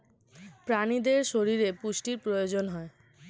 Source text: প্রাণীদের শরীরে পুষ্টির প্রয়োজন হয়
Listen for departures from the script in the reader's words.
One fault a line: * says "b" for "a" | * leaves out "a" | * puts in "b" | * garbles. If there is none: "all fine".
all fine